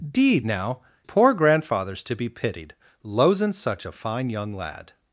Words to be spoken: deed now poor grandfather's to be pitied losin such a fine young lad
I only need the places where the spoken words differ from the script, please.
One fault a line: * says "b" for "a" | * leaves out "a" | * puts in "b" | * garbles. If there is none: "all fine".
all fine